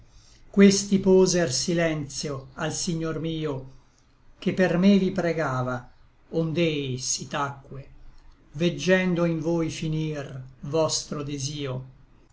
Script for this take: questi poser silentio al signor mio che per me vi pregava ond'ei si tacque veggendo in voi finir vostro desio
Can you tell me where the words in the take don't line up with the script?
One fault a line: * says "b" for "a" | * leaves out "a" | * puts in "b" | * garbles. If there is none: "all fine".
all fine